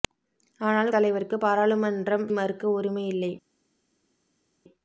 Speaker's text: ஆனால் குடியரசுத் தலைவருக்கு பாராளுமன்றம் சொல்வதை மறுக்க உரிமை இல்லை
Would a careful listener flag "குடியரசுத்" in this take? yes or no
yes